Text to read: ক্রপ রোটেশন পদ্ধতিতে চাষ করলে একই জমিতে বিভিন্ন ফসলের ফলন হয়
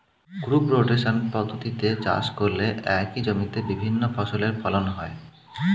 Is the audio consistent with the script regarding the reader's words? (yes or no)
yes